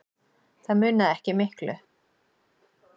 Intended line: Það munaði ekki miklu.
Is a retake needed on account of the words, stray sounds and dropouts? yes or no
no